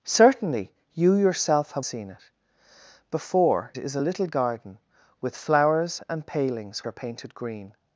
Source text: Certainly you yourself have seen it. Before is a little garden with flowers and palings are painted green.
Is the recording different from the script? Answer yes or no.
no